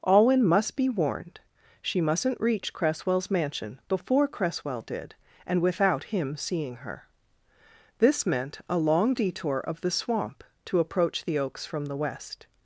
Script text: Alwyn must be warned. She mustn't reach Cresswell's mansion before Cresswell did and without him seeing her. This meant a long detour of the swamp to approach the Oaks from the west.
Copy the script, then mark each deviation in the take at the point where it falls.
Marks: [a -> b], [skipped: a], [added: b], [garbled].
Alwyn must be warned. She mustn't reach Cresswell's mansion before Cresswell did and without him seeing her. This meant a long detour of the swamp to approach the Oaks from the west.